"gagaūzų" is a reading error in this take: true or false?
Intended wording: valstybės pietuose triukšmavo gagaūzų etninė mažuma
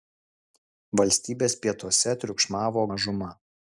true